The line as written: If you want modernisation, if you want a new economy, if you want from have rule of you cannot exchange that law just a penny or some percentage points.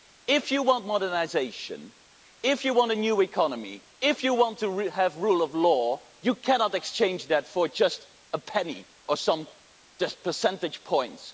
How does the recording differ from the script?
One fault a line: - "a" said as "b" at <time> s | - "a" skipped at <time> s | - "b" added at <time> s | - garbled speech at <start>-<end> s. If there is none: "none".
- "from" said as "to" at 4.6 s
- "law" added at 5.5 s
- "law" said as "for" at 7.5 s